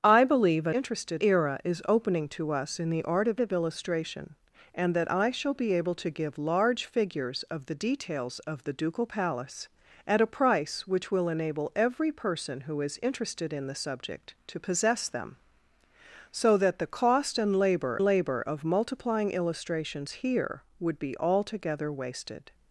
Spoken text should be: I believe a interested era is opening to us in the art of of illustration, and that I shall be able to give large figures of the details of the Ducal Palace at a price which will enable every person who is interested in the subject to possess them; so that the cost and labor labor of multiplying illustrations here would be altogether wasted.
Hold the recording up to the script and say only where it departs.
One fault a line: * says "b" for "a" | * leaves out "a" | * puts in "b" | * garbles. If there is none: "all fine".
all fine